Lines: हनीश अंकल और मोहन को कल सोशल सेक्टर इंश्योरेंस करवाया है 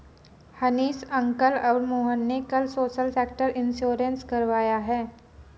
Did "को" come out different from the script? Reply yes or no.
yes